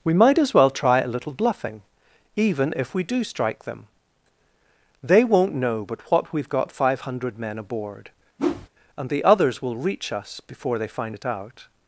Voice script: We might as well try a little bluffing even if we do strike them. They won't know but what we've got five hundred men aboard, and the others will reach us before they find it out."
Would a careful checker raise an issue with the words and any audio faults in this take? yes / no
yes